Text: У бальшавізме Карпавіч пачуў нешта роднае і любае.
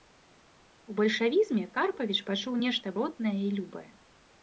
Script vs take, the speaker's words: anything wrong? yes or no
no